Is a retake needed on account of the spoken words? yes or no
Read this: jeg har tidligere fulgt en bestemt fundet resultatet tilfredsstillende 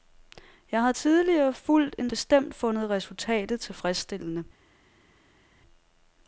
no